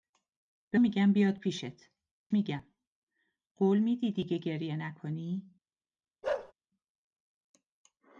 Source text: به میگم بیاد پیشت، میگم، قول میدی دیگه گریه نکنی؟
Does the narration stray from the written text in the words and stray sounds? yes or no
yes